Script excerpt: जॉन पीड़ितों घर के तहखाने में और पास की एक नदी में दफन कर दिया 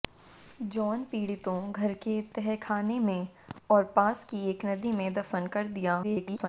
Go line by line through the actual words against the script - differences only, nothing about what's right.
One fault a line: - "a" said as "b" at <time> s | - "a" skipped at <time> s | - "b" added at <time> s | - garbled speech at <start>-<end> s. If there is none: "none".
- garbled speech at 6.0-6.5 s